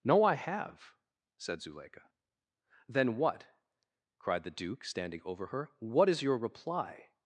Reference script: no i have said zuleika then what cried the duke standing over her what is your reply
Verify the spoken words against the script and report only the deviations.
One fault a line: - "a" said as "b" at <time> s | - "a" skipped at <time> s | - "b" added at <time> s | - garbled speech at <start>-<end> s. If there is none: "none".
none